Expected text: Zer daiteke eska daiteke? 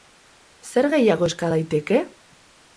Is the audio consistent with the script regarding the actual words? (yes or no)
no